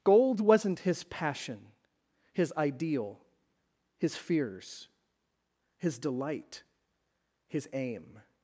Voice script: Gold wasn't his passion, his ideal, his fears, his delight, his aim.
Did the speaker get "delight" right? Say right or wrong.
right